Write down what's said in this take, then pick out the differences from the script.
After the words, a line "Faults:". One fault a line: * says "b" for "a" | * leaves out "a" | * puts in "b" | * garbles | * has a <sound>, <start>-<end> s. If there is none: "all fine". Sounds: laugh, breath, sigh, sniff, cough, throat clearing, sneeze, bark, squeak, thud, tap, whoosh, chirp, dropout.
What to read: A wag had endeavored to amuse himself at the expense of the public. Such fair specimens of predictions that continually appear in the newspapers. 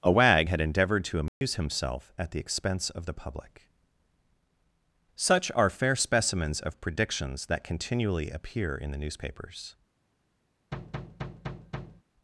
A wag had endeavored to amuse himself at the expense of the public. Such are fair specimens of predictions that continually appear in the newspapers.
Faults:
* has a dropout, 1.3-1.4 s
* puts in "are"
* has a thud, 10.7-12.0 s